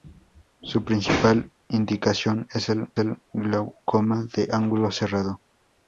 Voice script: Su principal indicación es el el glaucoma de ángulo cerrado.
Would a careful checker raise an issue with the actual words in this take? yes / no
no